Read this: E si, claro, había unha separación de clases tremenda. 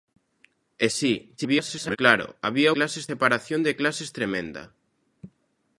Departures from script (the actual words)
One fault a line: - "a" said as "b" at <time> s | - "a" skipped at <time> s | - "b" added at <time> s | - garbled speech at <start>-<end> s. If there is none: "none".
- garbled speech at 1.4-2.0 s
- "unha" said as "clases" at 2.8 s